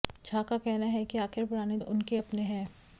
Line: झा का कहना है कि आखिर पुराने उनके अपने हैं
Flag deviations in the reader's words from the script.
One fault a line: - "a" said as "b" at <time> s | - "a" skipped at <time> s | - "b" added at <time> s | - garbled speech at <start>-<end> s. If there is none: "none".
none